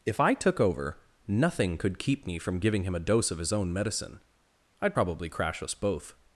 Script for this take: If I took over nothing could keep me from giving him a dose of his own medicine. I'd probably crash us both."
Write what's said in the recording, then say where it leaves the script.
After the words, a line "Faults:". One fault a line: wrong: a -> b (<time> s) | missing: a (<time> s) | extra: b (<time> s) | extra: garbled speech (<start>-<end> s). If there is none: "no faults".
If I took over nothing could keep me from giving him a dose of his own medicine. I'd probably crash us both."
Faults:
no faults